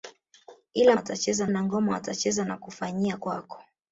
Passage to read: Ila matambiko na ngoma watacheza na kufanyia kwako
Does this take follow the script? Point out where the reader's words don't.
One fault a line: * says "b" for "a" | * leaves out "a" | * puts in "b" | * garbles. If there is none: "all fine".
* says "watacheza" for "matambiko"